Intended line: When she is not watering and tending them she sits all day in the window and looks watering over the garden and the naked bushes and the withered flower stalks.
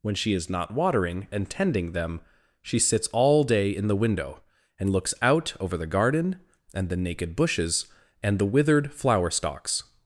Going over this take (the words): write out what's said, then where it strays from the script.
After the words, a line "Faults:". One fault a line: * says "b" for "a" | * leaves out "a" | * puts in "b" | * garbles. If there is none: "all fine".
When she is not watering and tending them she sits all day in the window and looks out over the garden and the naked bushes and the withered flower stalks.
Faults:
* says "out" for "watering"